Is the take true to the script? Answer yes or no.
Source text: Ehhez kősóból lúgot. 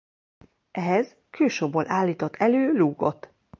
no